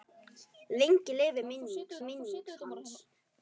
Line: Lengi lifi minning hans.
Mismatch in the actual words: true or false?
true